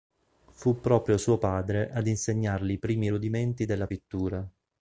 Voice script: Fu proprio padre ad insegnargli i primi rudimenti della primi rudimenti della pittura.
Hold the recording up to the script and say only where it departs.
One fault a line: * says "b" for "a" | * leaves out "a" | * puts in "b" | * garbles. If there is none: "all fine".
* puts in "suo"
* leaves out "primi rudimenti della"